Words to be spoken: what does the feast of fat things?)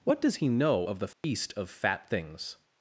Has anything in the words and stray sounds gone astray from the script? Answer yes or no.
yes